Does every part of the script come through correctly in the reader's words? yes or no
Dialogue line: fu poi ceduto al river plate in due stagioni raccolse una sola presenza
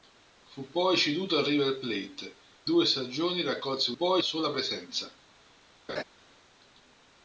no